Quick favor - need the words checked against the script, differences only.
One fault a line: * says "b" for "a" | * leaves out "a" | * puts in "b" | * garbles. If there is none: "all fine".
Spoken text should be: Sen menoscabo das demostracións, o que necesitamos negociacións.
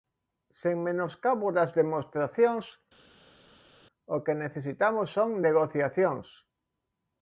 * puts in "son"